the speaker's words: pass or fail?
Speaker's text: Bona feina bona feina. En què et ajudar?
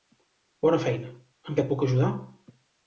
fail